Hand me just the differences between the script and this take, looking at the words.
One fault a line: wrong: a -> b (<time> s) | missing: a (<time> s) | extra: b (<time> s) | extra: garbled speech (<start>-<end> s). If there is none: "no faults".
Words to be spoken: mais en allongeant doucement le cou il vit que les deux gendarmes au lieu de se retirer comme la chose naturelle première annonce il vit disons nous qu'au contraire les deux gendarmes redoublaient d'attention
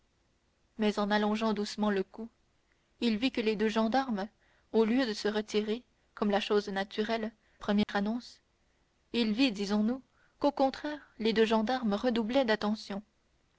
no faults